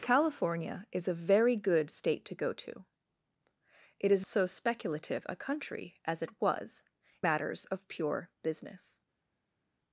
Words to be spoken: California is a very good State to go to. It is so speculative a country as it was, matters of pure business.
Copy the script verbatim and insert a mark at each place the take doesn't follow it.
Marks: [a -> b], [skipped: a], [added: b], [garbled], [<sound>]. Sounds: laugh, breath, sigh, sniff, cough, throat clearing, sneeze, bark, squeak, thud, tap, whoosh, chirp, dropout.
California is a very good State to go to. It is so speculative a country as it was, matters of pure business.